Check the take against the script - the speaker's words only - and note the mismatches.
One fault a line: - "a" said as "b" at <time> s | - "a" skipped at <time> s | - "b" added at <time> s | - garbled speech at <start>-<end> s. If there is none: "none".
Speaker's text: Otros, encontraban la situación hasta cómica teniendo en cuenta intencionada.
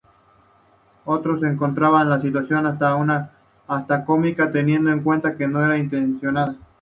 - "que no era" added at 5.3 s